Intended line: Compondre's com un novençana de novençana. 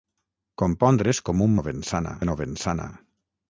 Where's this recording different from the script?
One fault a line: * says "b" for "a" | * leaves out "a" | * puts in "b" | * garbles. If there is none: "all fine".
all fine